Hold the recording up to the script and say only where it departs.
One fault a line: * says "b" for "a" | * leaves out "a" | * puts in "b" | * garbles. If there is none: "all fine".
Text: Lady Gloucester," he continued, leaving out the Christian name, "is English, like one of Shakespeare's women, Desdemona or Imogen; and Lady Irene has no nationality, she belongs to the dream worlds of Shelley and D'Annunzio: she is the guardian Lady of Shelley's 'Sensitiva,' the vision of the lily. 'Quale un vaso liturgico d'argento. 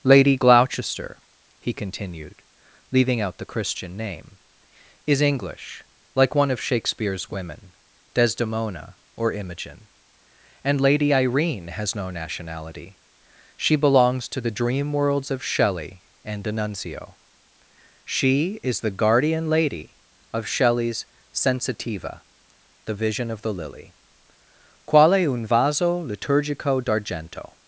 all fine